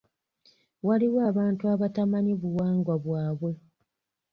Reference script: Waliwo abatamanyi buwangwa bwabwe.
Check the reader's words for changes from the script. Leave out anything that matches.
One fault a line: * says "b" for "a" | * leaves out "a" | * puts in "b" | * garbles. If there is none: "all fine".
* puts in "abantu"